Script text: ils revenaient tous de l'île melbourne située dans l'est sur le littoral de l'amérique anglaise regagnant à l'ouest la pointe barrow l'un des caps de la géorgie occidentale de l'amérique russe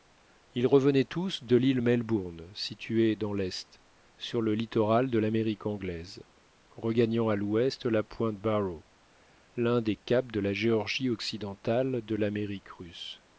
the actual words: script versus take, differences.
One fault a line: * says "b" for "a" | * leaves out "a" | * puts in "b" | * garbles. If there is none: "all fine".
all fine